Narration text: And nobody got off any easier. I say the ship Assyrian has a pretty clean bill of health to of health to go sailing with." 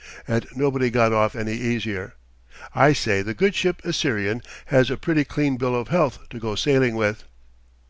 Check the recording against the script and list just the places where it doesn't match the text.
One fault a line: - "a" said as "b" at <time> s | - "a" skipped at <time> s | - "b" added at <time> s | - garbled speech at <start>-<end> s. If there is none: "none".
- "good" added at 3.3 s
- "of health to" skipped at 6.4 s